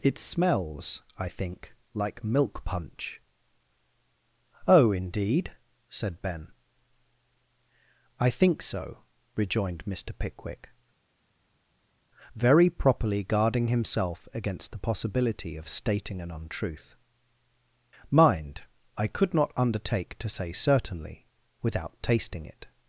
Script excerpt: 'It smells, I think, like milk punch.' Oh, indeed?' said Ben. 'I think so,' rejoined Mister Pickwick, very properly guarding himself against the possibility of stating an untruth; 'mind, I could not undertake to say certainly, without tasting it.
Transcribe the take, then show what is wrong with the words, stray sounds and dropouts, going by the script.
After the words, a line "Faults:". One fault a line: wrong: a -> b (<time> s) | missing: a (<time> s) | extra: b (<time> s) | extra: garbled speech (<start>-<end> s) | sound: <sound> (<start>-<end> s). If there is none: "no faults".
'It smells, I think, like milk punch.' Oh, indeed?' said Ben. 'I think so,' rejoined Mister Pickwick, very properly guarding himself against the possibility of stating an untruth; 'mind, I could not undertake to say certainly, without tasting it.
Faults:
no faults